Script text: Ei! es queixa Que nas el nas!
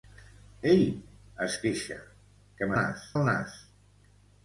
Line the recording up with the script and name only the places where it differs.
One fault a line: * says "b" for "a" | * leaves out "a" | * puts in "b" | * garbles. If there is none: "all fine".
all fine